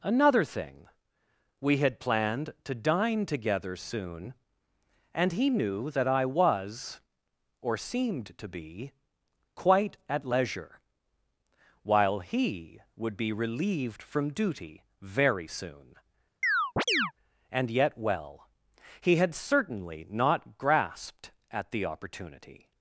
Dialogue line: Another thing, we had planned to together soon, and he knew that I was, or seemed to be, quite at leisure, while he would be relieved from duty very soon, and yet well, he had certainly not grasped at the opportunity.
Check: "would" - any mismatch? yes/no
no